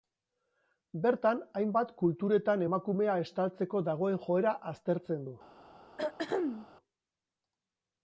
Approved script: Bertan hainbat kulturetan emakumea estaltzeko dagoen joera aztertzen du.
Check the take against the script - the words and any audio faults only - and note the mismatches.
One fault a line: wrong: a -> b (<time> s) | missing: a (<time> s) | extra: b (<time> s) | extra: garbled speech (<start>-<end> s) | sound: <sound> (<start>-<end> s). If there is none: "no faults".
sound: throat clearing (6.0-6.7 s)